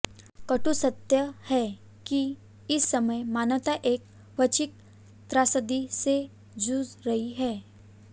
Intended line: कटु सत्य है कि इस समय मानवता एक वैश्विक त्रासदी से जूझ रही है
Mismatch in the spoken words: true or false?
false